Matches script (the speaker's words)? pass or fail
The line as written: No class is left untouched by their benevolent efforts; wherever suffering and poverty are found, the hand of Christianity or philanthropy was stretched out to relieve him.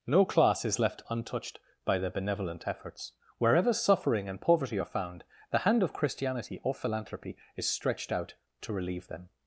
fail